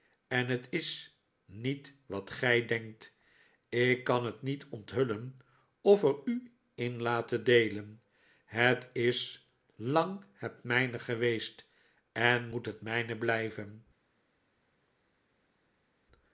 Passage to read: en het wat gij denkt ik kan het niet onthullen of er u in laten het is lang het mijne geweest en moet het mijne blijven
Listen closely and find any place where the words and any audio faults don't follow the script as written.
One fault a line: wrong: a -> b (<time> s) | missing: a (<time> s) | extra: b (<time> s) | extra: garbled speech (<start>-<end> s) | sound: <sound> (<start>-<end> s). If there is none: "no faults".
extra: is niet (0.7 s)
extra: deelen (7.4 s)